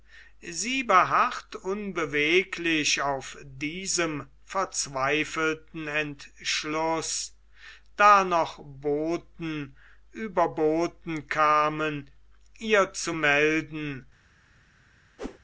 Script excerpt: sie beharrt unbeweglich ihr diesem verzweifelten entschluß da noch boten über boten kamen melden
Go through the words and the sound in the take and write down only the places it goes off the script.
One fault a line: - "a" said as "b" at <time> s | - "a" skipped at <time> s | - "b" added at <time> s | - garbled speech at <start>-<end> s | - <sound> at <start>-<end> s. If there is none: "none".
- "ihr" said as "auf" at 3.0 s
- "ihr zu" added at 12.6 s
- whoosh at 15.2-15.4 s